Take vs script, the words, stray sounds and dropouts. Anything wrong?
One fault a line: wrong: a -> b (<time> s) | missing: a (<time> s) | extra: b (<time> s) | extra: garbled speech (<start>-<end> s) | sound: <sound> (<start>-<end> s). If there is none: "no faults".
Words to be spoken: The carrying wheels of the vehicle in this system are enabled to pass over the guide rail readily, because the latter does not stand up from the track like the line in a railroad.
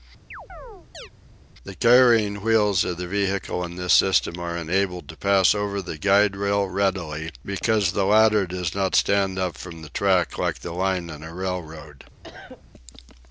sound: chirp (0.3-1.1 s)
sound: cough (12.2-12.6 s)